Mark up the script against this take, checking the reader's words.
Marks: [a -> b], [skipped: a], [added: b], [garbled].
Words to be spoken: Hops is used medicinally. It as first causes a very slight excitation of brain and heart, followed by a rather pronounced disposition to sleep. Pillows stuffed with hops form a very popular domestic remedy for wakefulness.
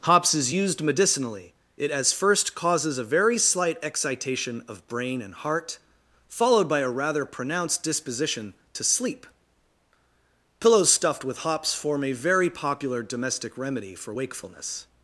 Hops is used medicinally. It as first causes a very slight excitation of brain and heart, followed by a rather pronounced disposition to sleep. Pillows stuffed with hops form a very popular domestic remedy for wakefulness.